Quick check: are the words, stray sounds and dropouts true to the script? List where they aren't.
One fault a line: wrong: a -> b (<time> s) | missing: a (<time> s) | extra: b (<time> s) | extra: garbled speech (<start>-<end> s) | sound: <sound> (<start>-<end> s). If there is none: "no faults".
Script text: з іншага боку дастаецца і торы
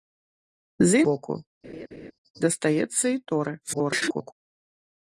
missing: іншага (1.0 s)
sound: laugh (1.6-2.1 s)
extra: garbled speech (3.6-4.3 s)